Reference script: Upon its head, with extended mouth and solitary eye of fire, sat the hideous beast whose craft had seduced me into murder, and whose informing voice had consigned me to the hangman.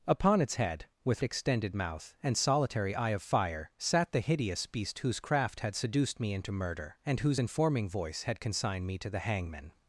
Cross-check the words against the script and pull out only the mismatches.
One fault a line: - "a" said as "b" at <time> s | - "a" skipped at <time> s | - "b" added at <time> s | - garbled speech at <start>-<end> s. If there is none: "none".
none